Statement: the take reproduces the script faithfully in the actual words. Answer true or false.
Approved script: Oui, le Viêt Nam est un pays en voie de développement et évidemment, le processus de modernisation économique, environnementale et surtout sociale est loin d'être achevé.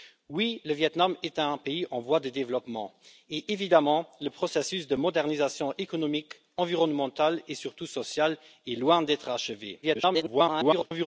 false